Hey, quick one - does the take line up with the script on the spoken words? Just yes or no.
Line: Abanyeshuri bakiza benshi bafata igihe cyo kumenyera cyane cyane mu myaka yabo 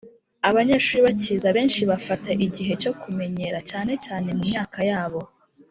yes